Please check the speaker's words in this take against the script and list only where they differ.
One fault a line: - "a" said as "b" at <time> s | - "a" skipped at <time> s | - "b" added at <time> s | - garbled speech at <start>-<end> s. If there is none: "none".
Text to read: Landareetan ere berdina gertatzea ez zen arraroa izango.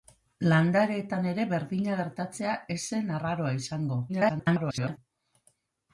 - garbled speech at 4.1-5.0 s